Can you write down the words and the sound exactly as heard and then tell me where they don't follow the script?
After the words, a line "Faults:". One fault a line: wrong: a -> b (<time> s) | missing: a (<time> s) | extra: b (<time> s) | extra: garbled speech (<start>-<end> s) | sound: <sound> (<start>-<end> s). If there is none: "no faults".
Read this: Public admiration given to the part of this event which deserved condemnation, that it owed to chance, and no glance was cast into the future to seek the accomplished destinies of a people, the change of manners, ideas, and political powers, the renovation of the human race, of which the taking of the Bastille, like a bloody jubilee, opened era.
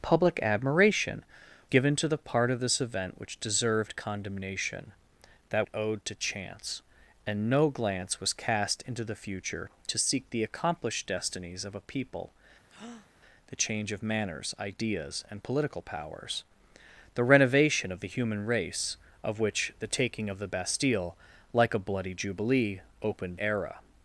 Public admiration given to the part of this event which deserved condemnation, that it owed to chance, and no glance was cast into the future to seek the accomplished destinies of a people, the change of manners, ideas, and political powers, the renovation of the human race, of which the taking of the Bastille, like a bloody jubilee, opened era.
Faults:
sound: breath (12.7-13.1 s)